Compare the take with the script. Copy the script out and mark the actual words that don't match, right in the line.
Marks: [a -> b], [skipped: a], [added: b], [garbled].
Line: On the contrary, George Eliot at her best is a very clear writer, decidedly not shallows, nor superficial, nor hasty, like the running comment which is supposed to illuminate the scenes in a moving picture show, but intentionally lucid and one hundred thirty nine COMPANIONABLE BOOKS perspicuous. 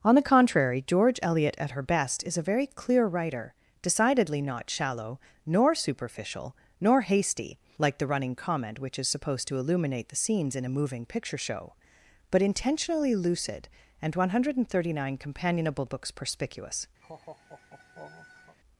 On the contrary, George Eliot at her best is a very clear writer, decidedly not [shallows, -> shallow] nor superficial, nor hasty, like the running comment which is supposed to illuminate the scenes in a moving picture show, but intentionally lucid and one hundred thirty nine COMPANIONABLE BOOKS perspicuous.